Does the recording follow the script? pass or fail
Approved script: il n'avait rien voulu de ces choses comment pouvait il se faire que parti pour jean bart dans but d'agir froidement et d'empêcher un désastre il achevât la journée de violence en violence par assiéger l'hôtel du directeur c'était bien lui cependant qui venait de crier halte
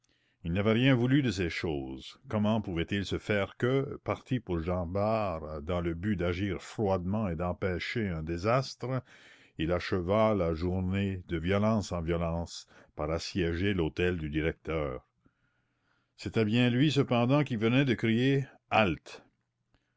fail